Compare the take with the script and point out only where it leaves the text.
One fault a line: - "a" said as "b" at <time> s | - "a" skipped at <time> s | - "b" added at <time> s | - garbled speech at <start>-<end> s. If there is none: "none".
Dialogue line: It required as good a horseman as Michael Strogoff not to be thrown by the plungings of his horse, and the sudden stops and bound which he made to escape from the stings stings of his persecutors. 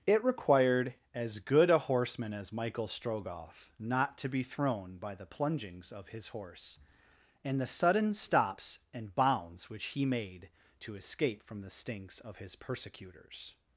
- "bound" said as "bounds" at 9.1 s
- "stings" skipped at 12.2 s